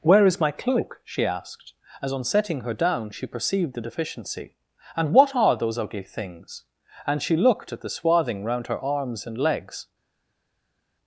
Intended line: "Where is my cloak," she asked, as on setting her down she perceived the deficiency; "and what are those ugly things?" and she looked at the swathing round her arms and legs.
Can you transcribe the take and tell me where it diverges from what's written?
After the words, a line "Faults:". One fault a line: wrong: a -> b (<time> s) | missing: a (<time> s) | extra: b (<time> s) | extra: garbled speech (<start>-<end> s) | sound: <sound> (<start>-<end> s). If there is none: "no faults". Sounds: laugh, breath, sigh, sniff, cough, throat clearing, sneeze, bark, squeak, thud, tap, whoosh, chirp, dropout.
"Where is my cloak," she asked, as on setting her down she perceived the deficiency; "and what are those ugly things?" and she looked at the swathing round her arms and legs.
Faults:
no faults